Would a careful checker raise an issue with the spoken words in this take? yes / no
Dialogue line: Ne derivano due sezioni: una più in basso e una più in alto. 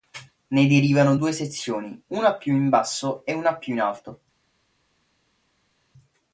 no